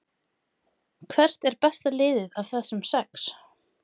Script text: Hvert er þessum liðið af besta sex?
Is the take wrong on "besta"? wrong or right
wrong